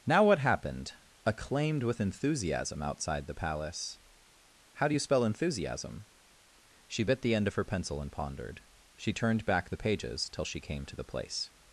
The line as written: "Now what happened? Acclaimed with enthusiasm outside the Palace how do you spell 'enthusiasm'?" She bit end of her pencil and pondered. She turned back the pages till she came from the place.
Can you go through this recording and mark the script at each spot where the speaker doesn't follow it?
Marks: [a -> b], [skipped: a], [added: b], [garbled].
"Now what happened? Acclaimed with enthusiasm outside the Palace how do you spell 'enthusiasm'?" She bit [added: the] end of her pencil and pondered. She turned back the pages till she came [from -> to] the place.